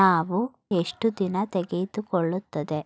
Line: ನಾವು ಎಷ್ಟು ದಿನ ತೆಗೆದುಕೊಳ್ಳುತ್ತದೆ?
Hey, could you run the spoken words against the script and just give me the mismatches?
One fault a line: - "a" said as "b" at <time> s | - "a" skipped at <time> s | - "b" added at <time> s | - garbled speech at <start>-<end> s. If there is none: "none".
none